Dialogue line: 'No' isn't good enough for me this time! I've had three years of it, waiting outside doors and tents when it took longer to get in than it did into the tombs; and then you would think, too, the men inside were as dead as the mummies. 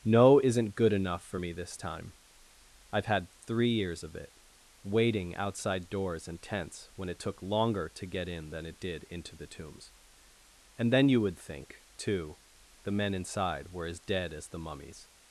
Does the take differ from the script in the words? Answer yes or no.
no